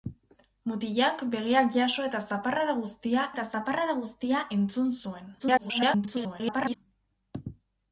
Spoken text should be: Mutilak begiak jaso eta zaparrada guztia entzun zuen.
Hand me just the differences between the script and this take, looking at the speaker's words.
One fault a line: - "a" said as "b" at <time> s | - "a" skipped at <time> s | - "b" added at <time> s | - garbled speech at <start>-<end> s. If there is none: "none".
- "eta zaparrada guztia" added at 3.3 s
- garbled speech at 5.4-6.8 s